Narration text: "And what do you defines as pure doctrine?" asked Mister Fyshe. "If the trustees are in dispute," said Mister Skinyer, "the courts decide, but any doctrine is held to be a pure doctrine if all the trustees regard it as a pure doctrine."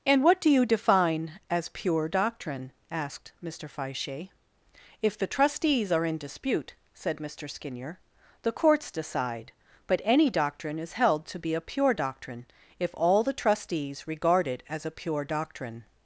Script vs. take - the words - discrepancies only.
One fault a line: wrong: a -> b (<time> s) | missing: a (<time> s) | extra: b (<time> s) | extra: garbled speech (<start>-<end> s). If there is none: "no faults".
wrong: defines -> define (0.7 s)